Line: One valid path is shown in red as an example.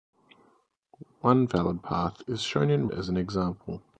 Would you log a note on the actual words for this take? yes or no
yes